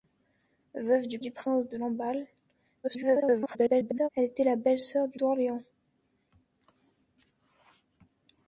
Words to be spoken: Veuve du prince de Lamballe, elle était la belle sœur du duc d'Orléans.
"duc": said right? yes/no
no